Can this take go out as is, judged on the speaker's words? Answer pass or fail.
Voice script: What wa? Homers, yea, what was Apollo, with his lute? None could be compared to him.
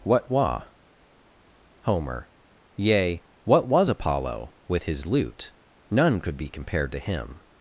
fail